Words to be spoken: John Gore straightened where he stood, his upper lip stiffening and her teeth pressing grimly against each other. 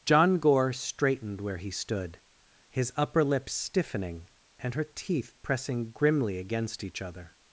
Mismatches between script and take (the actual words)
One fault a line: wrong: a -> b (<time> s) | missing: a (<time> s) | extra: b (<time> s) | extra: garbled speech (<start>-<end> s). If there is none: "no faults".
no faults